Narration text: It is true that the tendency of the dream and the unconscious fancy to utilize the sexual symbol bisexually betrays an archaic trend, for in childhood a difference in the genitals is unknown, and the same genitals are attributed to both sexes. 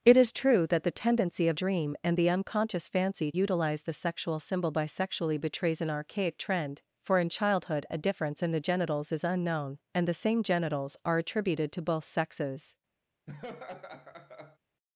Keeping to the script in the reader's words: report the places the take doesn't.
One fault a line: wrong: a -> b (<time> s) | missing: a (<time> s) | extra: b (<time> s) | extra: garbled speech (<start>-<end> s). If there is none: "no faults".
missing: the (1.6 s)
missing: to (3.3 s)